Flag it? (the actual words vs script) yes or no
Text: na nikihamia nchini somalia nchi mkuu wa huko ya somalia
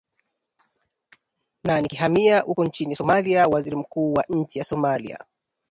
yes